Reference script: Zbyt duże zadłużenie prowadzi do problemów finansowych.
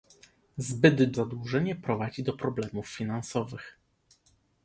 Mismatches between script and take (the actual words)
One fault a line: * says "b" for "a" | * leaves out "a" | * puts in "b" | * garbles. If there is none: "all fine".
* leaves out "duże"